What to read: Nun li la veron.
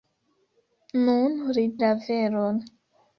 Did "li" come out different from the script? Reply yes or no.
no